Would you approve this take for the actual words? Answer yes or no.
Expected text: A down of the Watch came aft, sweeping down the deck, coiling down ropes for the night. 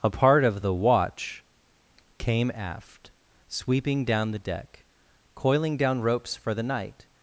no